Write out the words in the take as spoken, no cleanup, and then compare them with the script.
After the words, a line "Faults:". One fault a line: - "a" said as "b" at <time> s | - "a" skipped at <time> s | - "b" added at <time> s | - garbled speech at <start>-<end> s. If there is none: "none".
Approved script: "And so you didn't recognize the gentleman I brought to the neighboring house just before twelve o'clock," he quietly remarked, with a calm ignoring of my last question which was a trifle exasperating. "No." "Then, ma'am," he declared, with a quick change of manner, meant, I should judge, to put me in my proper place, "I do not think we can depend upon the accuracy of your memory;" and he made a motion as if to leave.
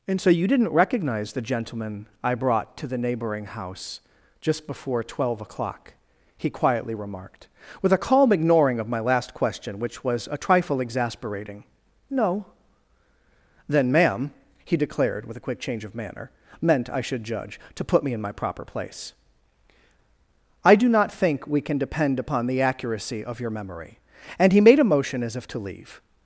"And so you didn't recognize the gentleman I brought to the neighboring house just before twelve o'clock," he quietly remarked, with a calm ignoring of my last question which was a trifle exasperating. "No." "Then, ma'am," he declared, with a quick change of manner, meant, I should judge, to put me in my proper place, "I do not think we can depend upon the accuracy of your memory;" and he made a motion as if to leave.
Faults:
none